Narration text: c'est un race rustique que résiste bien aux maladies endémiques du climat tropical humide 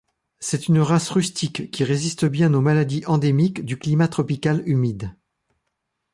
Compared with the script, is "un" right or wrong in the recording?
wrong